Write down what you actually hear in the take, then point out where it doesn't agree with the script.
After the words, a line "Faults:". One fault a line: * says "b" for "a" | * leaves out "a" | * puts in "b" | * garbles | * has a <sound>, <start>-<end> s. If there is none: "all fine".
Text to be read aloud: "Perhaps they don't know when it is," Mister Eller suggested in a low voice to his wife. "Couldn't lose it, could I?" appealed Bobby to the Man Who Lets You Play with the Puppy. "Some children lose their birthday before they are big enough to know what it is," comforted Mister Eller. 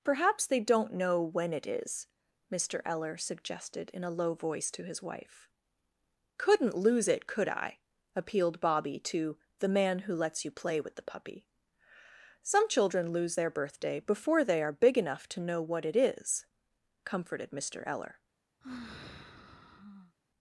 "Perhaps they don't know when it is," Mister Eller suggested in a low voice to his wife. "Couldn't lose it, could I?" appealed Bobby to the Man Who Lets You Play with the Puppy. "Some children lose their birthday before they are big enough to know what it is," comforted Mister Eller.
Faults:
* has a sigh, 18.6-20.2 s